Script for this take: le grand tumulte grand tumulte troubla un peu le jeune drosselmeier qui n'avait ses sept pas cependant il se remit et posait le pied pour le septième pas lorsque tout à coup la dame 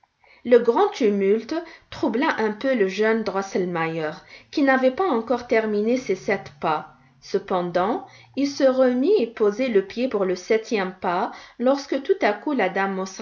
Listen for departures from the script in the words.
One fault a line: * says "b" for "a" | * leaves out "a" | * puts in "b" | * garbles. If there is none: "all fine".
* leaves out "grand tumulte"
* puts in "pas encore terminé"